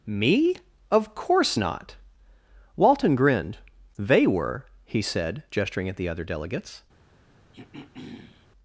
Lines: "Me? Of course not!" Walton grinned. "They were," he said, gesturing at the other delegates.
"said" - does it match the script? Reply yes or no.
yes